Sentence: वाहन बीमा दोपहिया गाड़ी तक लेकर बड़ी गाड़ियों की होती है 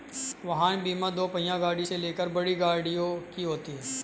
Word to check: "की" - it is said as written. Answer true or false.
true